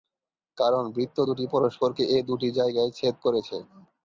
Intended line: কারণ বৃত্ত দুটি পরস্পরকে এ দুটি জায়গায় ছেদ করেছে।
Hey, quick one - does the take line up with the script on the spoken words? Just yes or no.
yes